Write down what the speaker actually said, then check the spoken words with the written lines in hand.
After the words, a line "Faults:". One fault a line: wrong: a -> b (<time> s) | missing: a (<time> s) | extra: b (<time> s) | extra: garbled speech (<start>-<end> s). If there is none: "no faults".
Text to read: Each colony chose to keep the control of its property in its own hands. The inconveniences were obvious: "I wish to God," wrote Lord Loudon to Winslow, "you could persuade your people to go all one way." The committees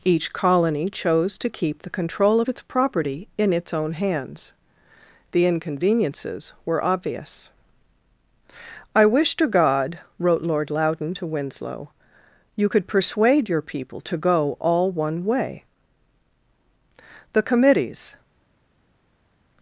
Each colony chose to keep the control of its property in its own hands. The inconveniences were obvious: "I wish to God," wrote Lord Loudon to Winslow, "you could persuade your people to go all one way." The committees
Faults:
no faults